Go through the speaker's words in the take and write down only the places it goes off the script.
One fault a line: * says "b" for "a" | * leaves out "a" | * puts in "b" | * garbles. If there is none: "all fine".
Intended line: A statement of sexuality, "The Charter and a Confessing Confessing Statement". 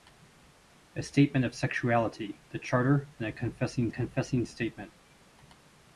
all fine